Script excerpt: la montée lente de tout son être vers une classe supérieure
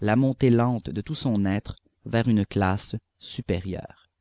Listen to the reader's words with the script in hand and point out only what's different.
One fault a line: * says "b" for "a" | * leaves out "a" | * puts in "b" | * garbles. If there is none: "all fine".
all fine